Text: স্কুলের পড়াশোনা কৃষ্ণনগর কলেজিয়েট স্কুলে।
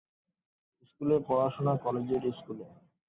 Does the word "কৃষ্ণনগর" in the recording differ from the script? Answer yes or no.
yes